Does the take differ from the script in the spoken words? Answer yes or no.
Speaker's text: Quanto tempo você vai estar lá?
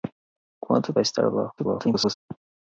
yes